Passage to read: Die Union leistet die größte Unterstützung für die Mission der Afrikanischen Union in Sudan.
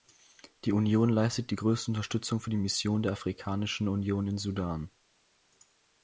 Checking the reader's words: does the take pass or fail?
pass